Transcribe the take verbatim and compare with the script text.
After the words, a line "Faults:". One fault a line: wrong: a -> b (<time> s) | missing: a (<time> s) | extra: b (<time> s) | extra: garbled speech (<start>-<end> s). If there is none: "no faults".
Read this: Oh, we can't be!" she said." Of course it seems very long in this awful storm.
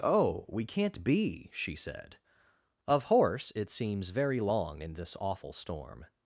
Oh, we can't be!" she said." Of horse it seems very long in this awful storm.
Faults:
wrong: course -> horse (3.0 s)